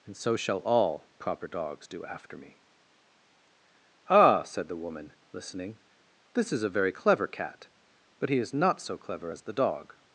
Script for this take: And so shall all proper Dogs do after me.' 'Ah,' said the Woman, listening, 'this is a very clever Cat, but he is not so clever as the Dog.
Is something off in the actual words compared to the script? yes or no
no